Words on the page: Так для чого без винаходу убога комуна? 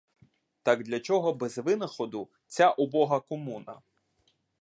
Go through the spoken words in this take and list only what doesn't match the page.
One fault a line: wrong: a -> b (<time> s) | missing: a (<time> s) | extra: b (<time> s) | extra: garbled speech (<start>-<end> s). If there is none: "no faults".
extra: ця (2.5 s)